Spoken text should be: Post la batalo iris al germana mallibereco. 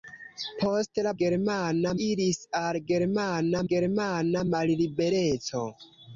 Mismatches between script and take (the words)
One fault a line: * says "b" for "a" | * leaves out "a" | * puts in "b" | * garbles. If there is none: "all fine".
* says "germana" for "batalo"
* puts in "germana"